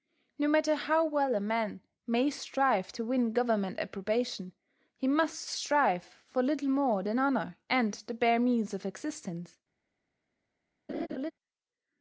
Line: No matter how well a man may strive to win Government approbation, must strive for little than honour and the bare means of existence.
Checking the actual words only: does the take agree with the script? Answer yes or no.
no